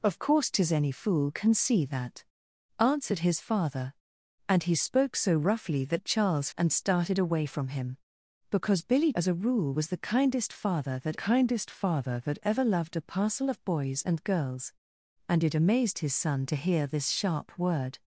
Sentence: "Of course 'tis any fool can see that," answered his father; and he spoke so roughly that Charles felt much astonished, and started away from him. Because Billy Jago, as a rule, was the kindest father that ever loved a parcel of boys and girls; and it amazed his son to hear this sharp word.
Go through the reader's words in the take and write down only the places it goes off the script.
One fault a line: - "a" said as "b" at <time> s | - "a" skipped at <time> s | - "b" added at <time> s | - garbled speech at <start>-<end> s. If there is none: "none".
- "felt much astonished" skipped at 6.5 s
- "Jago" skipped at 9.1 s
- "kindest father that" added at 11.2 s